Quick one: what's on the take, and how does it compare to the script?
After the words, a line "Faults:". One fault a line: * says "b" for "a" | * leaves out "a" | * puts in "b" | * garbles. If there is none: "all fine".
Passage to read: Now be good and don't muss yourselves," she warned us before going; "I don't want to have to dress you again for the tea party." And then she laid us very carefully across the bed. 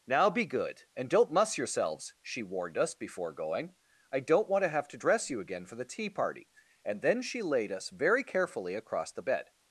Now be good and don't muss yourselves," she warned us before going; "I don't want to have to dress you again for the tea party." And then she laid us very carefully across the bed.
Faults:
all fine